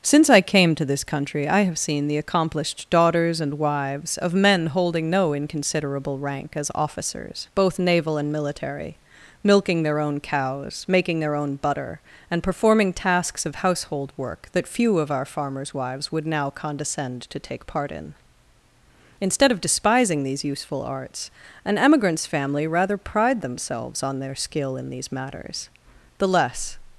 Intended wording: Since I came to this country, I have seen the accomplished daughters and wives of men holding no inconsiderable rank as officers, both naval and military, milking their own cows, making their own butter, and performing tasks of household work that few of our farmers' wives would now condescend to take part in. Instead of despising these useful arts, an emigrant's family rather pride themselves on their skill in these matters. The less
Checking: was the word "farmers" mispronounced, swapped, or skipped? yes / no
no